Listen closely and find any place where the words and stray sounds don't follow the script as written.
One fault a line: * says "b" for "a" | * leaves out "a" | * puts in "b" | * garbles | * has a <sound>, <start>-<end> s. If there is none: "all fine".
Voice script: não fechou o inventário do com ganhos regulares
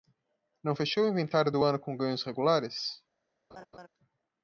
* puts in "ano"
* has a laugh, 3.5-3.9 s